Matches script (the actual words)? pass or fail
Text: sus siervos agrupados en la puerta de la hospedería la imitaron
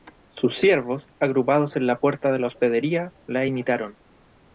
pass